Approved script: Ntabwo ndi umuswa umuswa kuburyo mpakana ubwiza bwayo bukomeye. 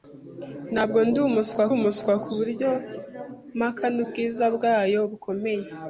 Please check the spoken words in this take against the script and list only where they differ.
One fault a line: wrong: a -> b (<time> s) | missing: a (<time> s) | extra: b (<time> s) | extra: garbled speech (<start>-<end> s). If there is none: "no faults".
no faults